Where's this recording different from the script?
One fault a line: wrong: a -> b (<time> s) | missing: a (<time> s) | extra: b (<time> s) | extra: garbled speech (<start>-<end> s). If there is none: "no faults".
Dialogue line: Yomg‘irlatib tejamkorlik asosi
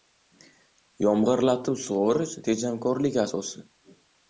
extra: sug‘orish (1.9 s)